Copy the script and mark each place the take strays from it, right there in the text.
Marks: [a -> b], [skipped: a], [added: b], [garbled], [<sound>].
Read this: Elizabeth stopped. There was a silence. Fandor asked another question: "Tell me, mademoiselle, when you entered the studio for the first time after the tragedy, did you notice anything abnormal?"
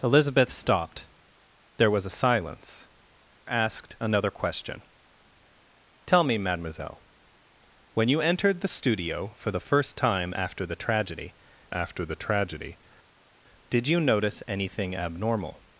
Elizabeth stopped. There was a silence. [skipped: Fandor] asked another question: "Tell me, mademoiselle, when you entered the studio for the first time after the tragedy, [added: after the tragedy] did you notice anything abnormal?"